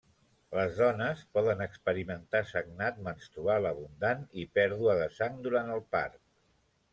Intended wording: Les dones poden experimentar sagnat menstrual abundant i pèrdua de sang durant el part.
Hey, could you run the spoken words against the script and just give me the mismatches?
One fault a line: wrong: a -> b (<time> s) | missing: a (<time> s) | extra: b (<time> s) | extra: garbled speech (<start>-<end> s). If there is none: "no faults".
no faults